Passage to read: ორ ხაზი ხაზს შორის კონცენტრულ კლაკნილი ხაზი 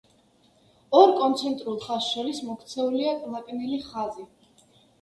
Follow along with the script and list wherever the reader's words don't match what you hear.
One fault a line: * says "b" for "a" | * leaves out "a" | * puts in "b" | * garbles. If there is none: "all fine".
* says "კონცენტრულ" for "ხაზი"
* says "მოქცეულია" for "კონცენტრულ"